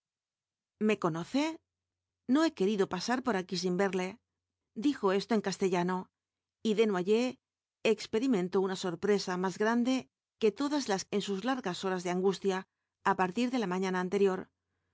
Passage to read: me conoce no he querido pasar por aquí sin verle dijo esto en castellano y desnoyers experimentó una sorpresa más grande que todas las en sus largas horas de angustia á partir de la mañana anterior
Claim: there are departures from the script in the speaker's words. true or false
false